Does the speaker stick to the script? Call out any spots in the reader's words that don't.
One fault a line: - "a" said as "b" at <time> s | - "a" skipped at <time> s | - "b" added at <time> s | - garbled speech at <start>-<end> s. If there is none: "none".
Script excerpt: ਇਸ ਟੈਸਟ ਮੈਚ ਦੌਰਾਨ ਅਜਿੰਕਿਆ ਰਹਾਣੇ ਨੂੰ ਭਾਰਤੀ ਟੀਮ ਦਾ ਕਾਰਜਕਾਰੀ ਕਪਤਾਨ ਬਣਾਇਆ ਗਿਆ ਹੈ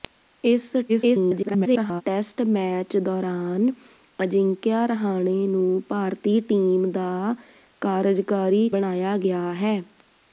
- garbled speech at 0.9-2.0 s
- "ਕਪਤਾਨ" skipped at 8.7 s